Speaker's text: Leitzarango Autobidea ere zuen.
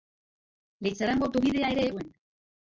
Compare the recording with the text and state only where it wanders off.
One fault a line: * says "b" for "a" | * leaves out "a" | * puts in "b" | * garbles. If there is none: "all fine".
all fine